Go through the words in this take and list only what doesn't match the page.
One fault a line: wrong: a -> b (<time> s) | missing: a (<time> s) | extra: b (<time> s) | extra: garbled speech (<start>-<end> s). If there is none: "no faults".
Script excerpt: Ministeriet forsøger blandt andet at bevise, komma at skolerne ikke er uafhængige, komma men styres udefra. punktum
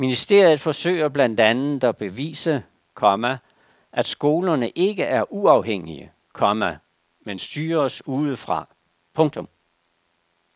no faults